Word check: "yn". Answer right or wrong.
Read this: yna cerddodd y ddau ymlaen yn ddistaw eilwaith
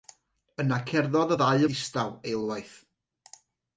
wrong